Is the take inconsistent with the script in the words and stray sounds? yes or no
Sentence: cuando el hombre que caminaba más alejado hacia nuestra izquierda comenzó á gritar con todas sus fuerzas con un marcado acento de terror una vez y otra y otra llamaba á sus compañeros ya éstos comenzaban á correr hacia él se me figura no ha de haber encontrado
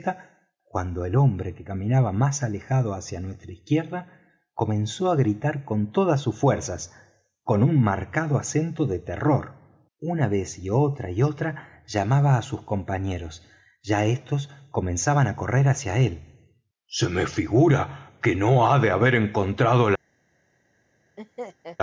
yes